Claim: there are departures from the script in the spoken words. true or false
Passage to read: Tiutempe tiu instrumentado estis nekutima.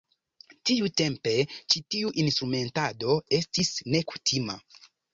true